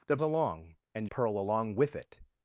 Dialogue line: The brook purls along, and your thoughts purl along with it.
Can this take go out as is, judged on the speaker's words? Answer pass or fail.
fail